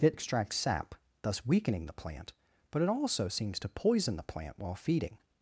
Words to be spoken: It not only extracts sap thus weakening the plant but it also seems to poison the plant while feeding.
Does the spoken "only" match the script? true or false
false